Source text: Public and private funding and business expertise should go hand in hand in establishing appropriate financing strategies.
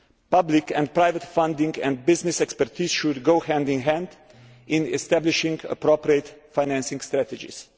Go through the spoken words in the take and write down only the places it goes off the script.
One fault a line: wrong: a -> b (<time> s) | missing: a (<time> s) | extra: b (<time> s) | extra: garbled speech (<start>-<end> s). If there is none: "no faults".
no faults